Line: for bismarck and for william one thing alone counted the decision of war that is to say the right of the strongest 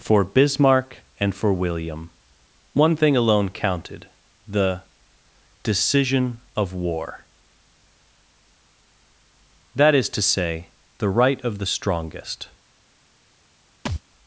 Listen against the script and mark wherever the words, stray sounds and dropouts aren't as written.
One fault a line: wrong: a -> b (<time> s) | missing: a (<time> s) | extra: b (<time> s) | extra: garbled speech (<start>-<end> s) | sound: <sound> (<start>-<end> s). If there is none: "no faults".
sound: thud (13.9-14.0 s)